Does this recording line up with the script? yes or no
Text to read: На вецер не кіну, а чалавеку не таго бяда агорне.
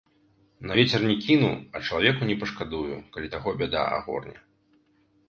no